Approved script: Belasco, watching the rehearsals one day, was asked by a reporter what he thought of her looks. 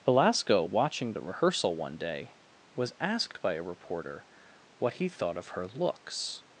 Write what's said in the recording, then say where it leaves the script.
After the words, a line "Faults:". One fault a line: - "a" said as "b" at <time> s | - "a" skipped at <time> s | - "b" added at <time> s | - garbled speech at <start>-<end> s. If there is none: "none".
Belasco, watching the rehearsal one day, was asked by a reporter what he thought of her looks.
Faults:
- "rehearsals" said as "rehearsal" at 1.2 s